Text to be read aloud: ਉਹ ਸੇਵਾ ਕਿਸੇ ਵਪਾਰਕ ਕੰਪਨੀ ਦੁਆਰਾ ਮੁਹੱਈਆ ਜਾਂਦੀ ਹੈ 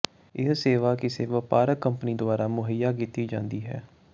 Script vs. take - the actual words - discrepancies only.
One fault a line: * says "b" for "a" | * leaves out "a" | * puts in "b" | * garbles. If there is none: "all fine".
* says "ਇਹ" for "ਉਹ"
* puts in "ਕੀਤੀ"